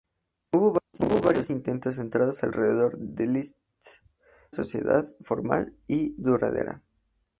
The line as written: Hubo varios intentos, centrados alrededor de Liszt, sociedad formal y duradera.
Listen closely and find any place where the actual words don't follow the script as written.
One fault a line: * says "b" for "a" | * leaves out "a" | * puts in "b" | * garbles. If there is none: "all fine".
all fine